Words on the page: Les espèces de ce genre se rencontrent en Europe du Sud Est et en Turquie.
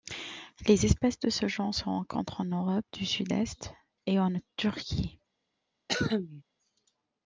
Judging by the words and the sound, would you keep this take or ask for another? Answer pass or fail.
fail